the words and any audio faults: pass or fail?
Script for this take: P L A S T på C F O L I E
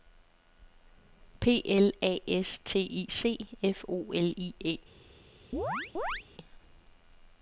fail